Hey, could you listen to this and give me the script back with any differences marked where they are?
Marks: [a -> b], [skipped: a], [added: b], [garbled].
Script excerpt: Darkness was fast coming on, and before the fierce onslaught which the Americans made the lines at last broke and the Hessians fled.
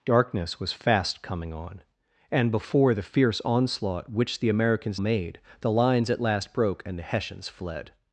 Darkness was fast coming on, and before the fierce onslaught which the Americans made the lines at last broke and the Hessians fled.